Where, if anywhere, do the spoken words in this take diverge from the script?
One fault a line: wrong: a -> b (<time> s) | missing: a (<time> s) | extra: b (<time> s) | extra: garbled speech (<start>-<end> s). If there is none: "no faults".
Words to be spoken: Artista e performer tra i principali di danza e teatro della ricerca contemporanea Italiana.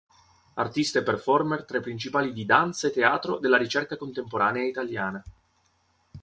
no faults